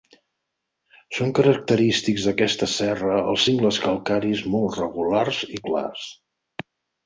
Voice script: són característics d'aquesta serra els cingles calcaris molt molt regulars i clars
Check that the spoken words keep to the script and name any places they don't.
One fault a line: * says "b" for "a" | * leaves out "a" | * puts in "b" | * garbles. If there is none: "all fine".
* leaves out "molt"